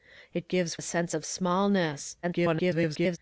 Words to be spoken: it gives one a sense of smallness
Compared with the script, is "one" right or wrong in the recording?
wrong